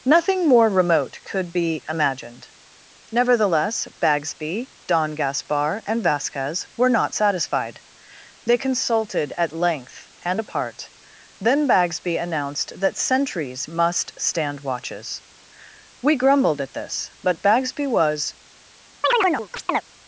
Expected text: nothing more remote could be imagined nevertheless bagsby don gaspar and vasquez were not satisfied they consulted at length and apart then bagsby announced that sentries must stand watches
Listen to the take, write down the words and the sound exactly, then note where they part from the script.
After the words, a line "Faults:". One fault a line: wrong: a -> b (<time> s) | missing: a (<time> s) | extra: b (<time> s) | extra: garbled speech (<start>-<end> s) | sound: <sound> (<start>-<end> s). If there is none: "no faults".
nothing more remote could be imagined nevertheless bagsby don gaspar and vasquez were not satisfied they consulted at length and apart then bagsby announced that sentries must stand watches we grumbled at this but bagsby was
Faults:
extra: we grumbled at this but bagsby was (16.0 s)
sound: chirp (19.0-19.8 s)